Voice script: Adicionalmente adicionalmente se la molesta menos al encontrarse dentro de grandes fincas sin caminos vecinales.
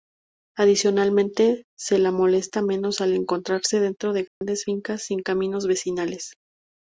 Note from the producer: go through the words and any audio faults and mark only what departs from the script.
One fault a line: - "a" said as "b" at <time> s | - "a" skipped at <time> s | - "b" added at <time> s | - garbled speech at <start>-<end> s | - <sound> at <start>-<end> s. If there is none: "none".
- "adicionalmente" skipped at 1.6 s
- dropout at 4.3-4.4 s